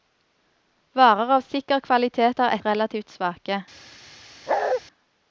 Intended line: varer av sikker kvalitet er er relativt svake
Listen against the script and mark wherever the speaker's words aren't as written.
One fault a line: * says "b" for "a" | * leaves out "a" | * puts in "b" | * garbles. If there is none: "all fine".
all fine